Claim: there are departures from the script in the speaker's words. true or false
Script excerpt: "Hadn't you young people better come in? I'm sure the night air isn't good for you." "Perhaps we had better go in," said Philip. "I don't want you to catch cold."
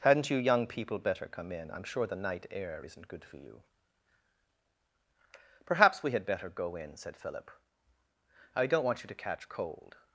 false